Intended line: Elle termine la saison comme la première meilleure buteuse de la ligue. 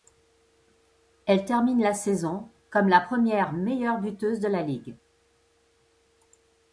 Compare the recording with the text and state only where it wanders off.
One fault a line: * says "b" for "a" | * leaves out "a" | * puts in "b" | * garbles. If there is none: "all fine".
all fine